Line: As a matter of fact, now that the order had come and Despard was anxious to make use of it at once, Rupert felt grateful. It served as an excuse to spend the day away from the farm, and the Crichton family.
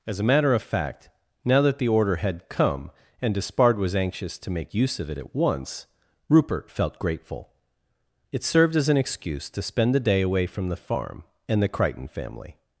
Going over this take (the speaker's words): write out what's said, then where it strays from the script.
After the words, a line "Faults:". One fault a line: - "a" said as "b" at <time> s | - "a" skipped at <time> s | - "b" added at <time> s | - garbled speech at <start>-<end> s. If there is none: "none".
As a matter of fact, now that the order had come and Despard was anxious to make use of it at once, Rupert felt grateful. It served as an excuse to spend the day away from the farm, and the Crichton family.
Faults:
none